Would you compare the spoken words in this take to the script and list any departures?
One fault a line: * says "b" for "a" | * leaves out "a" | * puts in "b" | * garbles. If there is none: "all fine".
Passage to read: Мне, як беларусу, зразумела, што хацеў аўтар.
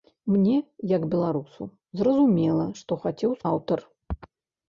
all fine